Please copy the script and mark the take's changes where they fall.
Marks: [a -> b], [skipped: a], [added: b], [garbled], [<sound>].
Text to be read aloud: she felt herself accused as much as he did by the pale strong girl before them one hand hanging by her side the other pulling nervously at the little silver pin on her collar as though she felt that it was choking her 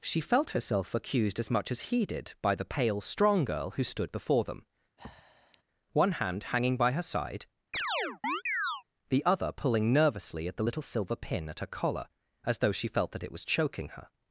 she felt herself accused as much as he did by the pale strong girl [added: who stood] before them [breath] one hand hanging by her side [chirp] the other pulling nervously at the little silver pin [on -> at] her collar as though she felt that it was choking her